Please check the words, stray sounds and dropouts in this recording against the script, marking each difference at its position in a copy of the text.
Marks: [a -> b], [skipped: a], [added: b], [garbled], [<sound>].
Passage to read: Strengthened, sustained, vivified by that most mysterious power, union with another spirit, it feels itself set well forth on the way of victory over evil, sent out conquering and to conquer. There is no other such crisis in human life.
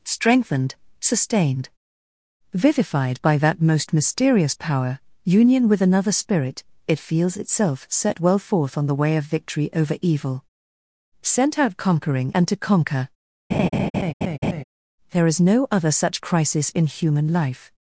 Strengthened, sustained, vivified by that most mysterious power, union with another spirit, it feels itself set well forth on the way of victory over evil, sent out conquering and to conquer. [laugh] There is no other such crisis in human life.